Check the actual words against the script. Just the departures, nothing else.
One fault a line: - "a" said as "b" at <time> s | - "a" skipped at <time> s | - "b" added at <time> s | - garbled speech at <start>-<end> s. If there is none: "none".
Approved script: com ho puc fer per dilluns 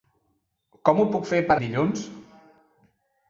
none